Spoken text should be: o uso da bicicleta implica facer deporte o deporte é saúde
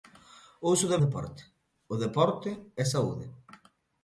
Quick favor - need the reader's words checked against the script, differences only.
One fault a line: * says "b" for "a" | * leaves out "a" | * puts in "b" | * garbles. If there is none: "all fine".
* leaves out "bicicleta implica facer"